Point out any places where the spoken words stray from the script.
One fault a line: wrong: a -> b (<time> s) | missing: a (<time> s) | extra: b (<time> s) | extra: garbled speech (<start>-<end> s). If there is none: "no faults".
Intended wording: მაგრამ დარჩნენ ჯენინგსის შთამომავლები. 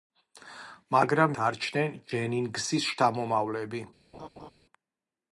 no faults